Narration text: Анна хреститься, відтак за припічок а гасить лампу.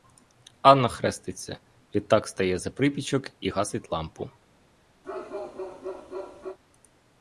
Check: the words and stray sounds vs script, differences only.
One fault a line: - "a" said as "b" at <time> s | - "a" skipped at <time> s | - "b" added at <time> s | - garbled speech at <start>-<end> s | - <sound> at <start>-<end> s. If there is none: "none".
- "стає" added at 2.3 s
- "а" said as "і" at 3.4 s
- bark at 5.0-6.6 s